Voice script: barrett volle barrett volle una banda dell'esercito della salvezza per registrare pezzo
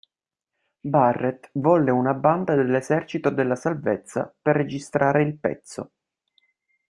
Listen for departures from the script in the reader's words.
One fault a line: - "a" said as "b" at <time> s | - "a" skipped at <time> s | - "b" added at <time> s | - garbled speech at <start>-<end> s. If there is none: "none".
- "barrett volle" skipped at 1.9 s
- "il" added at 5.2 s